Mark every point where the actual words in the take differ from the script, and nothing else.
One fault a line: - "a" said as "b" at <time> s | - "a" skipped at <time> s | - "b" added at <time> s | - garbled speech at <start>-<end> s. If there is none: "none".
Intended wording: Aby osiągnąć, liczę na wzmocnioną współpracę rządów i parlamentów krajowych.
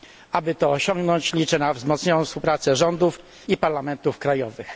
- "to" added at 0.5 s